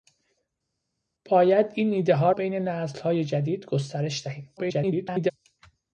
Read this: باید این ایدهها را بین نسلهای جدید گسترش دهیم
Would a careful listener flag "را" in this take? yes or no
yes